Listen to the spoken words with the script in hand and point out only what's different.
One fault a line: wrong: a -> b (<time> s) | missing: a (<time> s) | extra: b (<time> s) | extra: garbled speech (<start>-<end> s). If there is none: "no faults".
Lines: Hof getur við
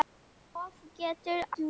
no faults